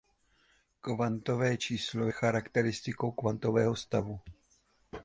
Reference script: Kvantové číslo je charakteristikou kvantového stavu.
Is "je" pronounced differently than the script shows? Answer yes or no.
yes